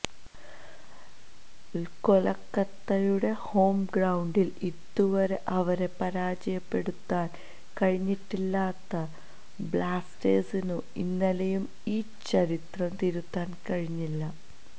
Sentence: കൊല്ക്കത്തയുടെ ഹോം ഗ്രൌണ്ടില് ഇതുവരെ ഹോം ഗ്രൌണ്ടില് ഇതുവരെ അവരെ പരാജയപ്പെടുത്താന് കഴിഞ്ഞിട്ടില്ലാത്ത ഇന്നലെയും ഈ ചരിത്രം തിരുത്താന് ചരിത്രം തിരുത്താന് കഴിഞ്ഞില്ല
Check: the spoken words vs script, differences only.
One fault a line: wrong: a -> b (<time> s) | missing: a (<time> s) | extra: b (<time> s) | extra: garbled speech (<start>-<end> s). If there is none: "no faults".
missing: ഹോം ഗ്രൌണ്ടില് ഇതുവരെ (5.4 s)
extra: ബ്ലാസ്റ്റേഴ്സിനു (9.7 s)
missing: ചരിത്രം തിരുത്താന് (13.6 s)